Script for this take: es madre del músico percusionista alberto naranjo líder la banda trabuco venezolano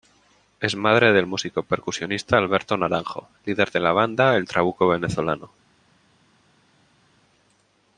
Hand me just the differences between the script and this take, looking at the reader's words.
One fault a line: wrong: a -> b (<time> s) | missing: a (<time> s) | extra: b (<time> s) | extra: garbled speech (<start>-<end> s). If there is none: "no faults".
extra: de (3.7 s)
extra: el (4.3 s)